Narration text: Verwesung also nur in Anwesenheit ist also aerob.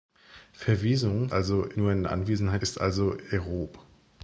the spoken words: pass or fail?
pass